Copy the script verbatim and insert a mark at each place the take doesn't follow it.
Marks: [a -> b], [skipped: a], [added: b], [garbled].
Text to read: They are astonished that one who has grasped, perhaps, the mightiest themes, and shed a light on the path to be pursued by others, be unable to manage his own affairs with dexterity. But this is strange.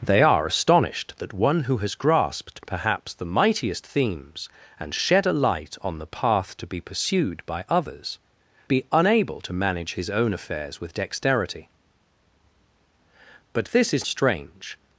They are astonished that one who has grasped, perhaps, the mightiest themes, and shed a light on the path to be pursued by others, be unable to manage his own affairs with dexterity. But this is strange.